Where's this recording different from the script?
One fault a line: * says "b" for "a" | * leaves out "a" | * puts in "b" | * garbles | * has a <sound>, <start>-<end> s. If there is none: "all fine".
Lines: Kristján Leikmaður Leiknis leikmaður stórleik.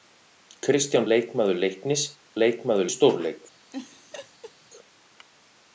* has a laugh, 3.7-4.5 s